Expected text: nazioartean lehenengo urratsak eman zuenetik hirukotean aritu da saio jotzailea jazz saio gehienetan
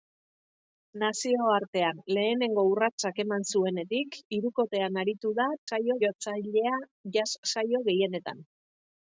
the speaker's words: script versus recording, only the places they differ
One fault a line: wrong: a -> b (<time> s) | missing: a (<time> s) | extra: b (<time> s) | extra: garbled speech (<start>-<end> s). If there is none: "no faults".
no faults